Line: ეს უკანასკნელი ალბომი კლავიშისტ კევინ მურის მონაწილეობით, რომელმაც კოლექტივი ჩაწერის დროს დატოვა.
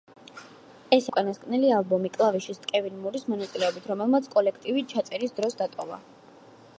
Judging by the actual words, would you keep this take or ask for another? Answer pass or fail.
pass